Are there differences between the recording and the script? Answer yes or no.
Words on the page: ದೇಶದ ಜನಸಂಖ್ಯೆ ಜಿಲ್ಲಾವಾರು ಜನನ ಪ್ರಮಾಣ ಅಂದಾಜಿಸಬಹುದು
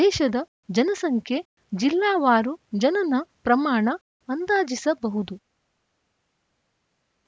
no